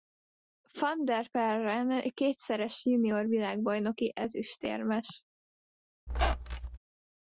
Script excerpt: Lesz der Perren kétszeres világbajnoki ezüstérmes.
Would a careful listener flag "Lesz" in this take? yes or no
yes